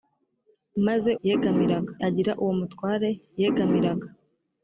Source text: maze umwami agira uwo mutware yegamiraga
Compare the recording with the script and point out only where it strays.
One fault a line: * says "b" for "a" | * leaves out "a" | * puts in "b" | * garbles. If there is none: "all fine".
* says "yegamiraga" for "umwami"